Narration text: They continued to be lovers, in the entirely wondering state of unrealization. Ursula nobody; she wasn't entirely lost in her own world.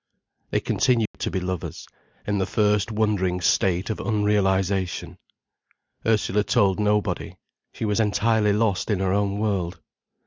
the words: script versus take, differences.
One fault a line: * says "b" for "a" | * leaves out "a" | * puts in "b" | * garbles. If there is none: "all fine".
* says "first" for "entirely"
* puts in "told"
* says "was" for "wasn't"